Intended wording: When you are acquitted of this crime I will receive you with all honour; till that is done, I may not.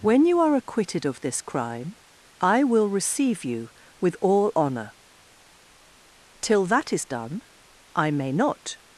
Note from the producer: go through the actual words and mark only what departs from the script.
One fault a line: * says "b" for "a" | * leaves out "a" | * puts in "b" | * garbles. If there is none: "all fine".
all fine